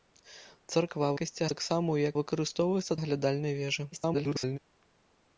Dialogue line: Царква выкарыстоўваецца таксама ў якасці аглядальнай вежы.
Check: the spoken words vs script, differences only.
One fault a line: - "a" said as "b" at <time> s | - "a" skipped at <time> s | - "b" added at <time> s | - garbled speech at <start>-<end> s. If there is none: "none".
- "выкарыстоўваецца" said as "якасці" at 1.2 s
- "якасці" said as "выкарыстоўваецца" at 2.2 s
- garbled speech at 3.9-4.6 s